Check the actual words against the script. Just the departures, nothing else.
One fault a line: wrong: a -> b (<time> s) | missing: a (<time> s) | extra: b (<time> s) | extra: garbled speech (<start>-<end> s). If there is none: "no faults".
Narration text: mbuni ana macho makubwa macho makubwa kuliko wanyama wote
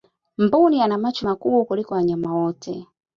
missing: macho makubwa (1.6 s)